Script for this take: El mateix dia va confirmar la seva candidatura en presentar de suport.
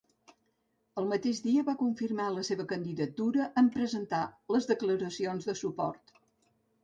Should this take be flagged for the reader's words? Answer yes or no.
yes